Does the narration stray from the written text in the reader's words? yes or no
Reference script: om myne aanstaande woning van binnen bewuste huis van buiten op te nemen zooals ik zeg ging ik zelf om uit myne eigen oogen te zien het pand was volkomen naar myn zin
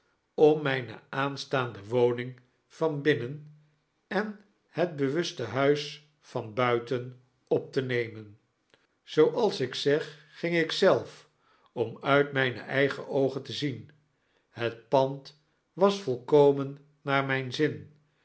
yes